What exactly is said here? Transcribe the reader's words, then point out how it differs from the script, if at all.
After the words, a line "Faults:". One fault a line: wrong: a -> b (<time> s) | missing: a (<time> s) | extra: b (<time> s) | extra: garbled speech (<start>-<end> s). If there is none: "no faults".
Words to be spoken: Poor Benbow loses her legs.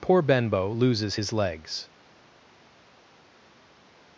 Poor Benbow loses his legs.
Faults:
wrong: her -> his (1.1 s)